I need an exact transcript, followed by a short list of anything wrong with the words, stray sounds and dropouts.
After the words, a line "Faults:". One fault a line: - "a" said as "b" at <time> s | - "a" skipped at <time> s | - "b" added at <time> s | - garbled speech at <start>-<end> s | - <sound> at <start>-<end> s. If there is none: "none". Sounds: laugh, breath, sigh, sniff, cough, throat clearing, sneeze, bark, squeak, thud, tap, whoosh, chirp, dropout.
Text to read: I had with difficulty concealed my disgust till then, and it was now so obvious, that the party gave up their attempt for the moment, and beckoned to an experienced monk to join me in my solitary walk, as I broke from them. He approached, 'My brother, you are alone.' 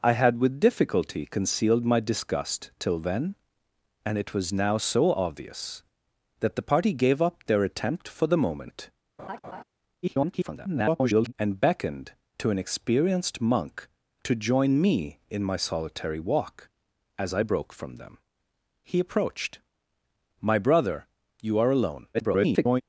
I had with difficulty concealed my disgust till then, and it was now so obvious, that the party gave up their attempt for the moment, [garbled] and beckoned to an experienced monk to join me in my solitary walk, as I broke from them. He approached, 'My brother, you are alone.' [garbled]
Faults:
- laugh at 9.2-9.6 s
- garbled speech at 10.0-11.3 s
- garbled speech at 22.1-22.8 s